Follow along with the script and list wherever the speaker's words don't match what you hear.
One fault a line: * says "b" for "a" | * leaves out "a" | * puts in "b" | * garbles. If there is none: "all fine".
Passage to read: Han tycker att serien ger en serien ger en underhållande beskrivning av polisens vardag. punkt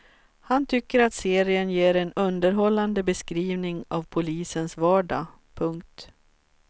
* leaves out "serien ger en"